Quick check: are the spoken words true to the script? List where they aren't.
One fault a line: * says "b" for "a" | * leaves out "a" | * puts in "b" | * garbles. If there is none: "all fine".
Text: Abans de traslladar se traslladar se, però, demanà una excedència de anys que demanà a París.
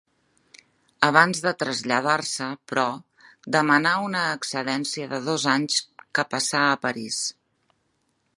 * leaves out "traslladar se"
* puts in "dos"
* says "passà" for "demanà"